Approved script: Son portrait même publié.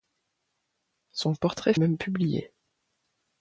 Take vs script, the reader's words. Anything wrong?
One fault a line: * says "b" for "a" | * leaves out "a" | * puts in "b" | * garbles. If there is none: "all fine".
all fine